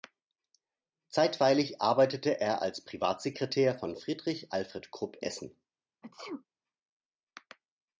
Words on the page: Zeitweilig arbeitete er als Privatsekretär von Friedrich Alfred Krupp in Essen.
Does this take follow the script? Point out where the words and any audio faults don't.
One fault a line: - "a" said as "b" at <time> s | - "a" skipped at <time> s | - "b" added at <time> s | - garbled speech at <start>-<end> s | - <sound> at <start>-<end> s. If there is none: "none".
- "in" skipped at 5.2 s
- sneeze at 6.0-6.5 s